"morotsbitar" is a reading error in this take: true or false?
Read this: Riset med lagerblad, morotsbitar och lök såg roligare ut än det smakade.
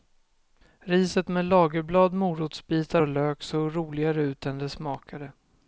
false